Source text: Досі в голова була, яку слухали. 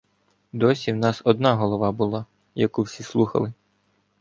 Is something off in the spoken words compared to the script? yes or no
yes